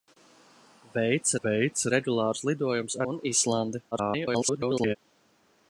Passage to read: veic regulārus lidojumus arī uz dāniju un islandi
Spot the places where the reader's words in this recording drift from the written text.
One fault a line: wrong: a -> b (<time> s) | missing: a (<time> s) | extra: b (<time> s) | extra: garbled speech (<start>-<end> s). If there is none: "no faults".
extra: veic (1.4 s)
missing: arī uz dāniju (3.0 s)
extra: garbled speech (3.9-5.0 s)